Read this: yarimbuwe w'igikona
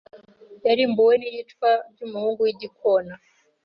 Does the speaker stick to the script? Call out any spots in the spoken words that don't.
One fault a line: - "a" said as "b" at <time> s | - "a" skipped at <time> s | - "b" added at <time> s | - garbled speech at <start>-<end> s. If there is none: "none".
- "n'iyicwa ry'umuhungu" added at 1.2 s